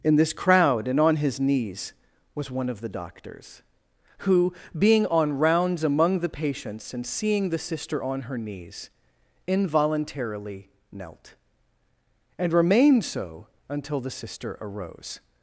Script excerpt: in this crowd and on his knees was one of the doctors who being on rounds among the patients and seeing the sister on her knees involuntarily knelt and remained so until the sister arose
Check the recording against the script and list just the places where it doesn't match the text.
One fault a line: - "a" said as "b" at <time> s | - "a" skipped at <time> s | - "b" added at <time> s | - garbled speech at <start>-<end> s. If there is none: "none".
none